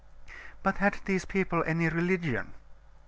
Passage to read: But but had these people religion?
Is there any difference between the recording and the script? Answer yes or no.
yes